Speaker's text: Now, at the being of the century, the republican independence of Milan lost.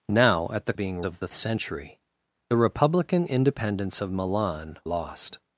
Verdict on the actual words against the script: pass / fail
pass